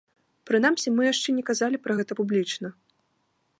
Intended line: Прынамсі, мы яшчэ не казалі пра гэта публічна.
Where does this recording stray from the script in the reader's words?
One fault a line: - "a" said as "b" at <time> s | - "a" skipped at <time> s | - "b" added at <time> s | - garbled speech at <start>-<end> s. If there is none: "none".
none